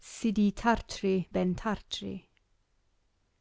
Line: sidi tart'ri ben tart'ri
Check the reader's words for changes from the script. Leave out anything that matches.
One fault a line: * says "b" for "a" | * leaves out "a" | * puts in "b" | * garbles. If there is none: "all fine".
all fine